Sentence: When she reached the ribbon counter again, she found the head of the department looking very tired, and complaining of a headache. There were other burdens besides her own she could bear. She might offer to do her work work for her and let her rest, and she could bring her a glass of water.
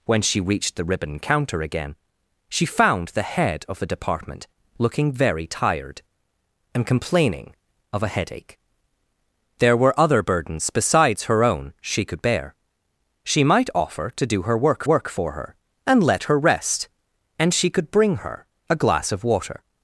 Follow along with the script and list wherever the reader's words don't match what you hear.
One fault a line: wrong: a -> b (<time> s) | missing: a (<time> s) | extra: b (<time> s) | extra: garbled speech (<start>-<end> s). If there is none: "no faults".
no faults